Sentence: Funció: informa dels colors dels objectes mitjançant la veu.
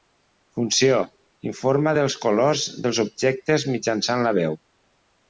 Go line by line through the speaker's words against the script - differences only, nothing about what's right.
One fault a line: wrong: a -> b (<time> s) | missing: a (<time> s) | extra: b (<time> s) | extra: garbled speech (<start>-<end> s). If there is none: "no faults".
no faults